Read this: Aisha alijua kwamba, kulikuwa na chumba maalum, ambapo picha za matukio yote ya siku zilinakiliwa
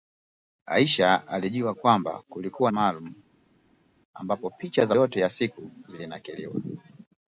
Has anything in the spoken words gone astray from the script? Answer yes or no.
yes